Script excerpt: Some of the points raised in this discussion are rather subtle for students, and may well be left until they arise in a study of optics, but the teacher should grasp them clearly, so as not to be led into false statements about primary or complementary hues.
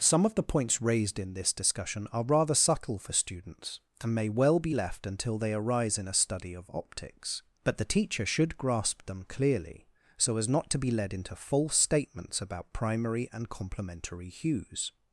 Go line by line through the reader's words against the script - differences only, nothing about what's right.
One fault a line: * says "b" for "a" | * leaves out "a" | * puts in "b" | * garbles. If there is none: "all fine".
* says "and" for "or"